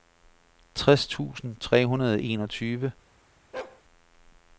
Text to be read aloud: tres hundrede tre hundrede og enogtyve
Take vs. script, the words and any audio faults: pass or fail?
fail